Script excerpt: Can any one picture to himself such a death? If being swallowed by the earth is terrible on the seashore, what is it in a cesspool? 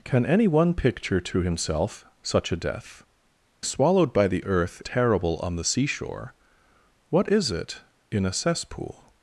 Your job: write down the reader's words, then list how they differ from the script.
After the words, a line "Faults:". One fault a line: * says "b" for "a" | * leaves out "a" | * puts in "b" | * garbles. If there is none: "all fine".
Can any one picture to himself such a death? Swallowed by the earth terrible on the seashore, what is it in a cesspool?
Faults:
* leaves out "If being"
* leaves out "is"